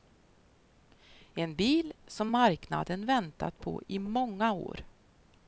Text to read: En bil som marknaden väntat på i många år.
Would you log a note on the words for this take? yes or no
no